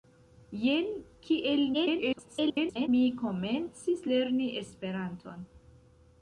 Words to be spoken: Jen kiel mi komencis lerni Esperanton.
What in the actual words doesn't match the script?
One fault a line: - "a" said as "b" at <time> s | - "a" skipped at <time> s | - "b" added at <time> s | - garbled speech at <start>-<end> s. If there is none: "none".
- garbled speech at 1.7-2.9 s